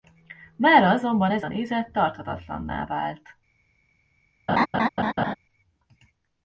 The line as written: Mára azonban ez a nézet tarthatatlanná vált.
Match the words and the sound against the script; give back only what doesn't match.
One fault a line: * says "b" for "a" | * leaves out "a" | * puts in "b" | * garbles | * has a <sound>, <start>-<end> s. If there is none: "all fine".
* has a laugh, 4.5-5.4 s